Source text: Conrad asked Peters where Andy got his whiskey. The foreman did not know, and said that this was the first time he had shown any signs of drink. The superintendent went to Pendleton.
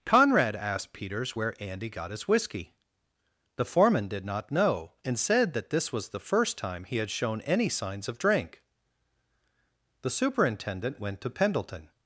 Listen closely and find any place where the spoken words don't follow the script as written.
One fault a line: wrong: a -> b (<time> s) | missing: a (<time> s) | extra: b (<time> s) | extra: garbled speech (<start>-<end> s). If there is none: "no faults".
no faults